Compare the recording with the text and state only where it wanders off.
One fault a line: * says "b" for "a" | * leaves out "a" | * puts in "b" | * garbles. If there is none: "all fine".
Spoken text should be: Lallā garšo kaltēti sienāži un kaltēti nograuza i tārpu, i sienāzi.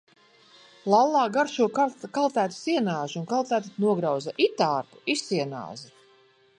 all fine